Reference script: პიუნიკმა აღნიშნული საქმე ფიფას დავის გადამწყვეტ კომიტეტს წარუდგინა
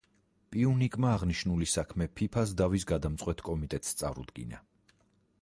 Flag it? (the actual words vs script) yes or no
no